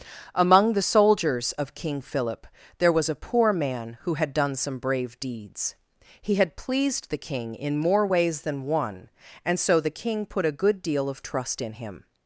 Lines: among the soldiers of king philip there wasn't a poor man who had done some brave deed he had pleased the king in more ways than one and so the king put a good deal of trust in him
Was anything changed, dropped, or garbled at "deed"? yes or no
yes